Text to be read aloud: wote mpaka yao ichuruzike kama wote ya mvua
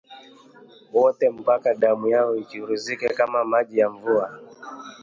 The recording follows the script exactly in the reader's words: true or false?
false